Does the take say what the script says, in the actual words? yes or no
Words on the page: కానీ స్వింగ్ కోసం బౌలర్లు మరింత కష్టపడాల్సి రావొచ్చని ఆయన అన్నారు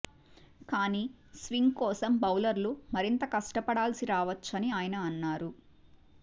yes